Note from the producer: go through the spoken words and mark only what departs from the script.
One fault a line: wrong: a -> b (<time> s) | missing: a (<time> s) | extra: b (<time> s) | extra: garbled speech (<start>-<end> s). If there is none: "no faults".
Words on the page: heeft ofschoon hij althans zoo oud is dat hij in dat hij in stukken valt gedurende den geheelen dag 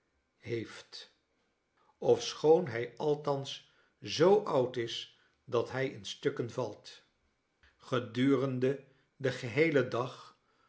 missing: dat hij in (6.0 s)